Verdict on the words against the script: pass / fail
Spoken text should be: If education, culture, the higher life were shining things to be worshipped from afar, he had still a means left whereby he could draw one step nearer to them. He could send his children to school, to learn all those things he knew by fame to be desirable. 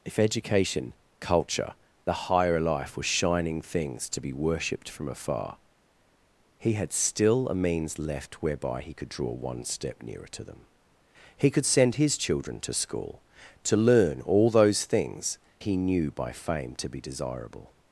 pass